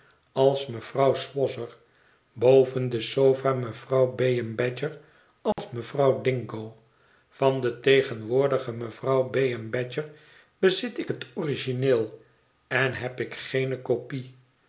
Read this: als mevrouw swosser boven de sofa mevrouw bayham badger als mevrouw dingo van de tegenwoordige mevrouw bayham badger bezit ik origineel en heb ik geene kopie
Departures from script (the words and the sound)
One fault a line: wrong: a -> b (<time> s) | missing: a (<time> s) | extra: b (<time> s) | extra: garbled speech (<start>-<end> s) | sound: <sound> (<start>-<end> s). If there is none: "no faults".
sound: dropout (5.5-5.6 s)
extra: het (11.1 s)